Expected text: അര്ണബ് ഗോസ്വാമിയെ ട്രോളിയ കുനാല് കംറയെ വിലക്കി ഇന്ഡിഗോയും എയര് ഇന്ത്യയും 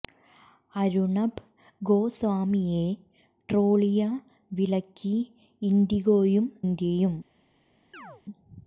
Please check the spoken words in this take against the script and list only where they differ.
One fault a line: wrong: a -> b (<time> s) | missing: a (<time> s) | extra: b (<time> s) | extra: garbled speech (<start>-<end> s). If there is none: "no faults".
missing: കുനാല് കംറയെ (4.0 s)
missing: എയര് (6.5 s)